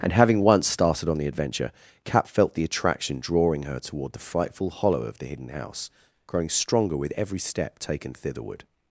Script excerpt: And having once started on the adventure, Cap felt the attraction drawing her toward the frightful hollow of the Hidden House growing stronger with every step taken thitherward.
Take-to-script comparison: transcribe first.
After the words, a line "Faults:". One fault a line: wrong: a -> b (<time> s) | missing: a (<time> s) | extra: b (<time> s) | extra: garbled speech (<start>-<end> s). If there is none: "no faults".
And having once started on the adventure, Cap felt the attraction drawing her toward the frightful hollow of the Hidden House growing stronger with every step taken thitherward.
Faults:
no faults